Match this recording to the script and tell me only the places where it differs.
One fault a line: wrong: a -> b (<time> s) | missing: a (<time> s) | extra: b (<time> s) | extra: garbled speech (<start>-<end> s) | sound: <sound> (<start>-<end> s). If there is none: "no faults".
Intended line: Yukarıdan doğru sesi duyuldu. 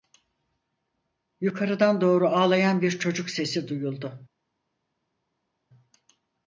extra: ağlayan bir çocuk (2.3 s)